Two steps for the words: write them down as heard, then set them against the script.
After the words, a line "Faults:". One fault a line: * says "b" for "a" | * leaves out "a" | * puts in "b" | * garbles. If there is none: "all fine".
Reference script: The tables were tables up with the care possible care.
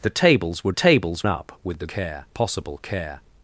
The tables were tables up with the care possible care.
Faults:
all fine